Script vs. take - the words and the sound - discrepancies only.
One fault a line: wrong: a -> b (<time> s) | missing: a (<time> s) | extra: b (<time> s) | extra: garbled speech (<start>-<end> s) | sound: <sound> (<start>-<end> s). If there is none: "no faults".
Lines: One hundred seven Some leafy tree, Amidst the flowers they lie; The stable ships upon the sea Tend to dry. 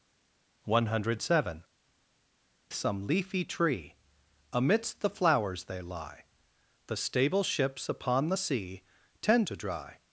no faults